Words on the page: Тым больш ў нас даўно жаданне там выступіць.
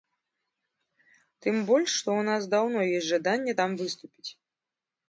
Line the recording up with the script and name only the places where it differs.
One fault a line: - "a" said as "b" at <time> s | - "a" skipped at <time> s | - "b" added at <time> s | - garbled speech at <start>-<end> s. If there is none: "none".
- "што" added at 2.0 s
- "ёсць" added at 3.0 s